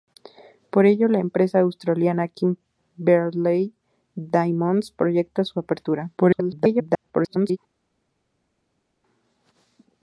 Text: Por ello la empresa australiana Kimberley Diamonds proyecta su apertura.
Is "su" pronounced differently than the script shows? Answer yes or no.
no